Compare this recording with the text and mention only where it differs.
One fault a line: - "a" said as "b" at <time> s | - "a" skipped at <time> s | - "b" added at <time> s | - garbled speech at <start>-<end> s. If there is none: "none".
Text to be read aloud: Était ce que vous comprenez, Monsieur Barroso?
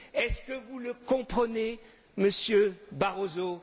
- "Était" said as "Est" at 0.1 s
- "le" added at 0.8 s